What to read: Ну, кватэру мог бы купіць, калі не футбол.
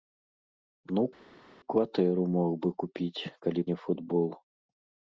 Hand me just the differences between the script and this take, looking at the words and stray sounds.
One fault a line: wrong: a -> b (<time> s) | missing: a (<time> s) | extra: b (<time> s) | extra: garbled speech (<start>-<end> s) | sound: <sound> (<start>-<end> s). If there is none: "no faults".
no faults